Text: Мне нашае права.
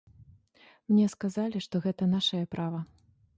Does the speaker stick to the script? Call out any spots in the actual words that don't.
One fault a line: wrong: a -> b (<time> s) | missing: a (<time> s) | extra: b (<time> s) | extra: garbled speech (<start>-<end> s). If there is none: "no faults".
extra: сказалі што гэта (1.1 s)